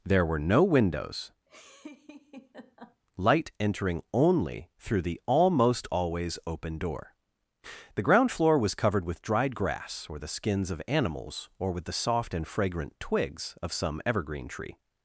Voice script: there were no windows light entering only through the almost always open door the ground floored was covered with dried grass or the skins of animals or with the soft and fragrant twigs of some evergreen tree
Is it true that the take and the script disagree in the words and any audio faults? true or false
true